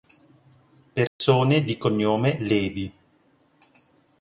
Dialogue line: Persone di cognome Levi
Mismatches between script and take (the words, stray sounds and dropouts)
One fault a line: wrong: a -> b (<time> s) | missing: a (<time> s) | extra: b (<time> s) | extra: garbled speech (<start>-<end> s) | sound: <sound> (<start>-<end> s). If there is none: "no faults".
sound: dropout (1.1-1.2 s)